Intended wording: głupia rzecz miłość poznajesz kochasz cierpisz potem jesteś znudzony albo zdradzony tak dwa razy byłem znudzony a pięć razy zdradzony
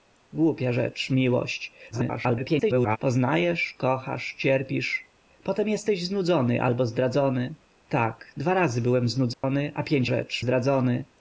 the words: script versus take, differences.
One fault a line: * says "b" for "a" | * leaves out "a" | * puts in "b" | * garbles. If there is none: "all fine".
* garbles
* says "rzecz" for "razy"